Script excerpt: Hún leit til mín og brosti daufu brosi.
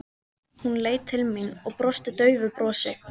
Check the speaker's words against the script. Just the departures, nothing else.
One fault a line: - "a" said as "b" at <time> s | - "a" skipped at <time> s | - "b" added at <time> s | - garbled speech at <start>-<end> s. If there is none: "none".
none